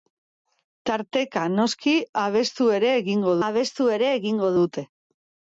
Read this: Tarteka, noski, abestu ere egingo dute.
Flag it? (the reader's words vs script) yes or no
yes